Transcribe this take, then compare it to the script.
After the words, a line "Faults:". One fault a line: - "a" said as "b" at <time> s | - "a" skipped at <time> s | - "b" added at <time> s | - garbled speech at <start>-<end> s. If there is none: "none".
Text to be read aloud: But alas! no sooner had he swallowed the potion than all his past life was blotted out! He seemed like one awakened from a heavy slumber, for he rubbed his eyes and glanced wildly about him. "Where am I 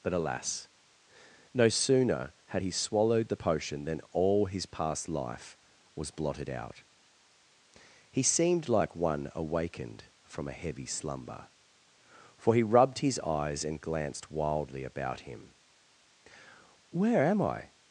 But alas! no sooner had he swallowed the potion than all his past life was blotted out! He seemed like one awakened from a heavy slumber, for he rubbed his eyes and glanced wildly about him. "Where am I
Faults:
none